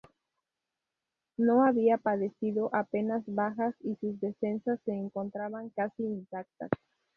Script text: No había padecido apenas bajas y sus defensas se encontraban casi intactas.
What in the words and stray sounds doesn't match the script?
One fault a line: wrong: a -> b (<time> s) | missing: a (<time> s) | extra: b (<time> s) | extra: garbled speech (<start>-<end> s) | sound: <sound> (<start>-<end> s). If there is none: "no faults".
no faults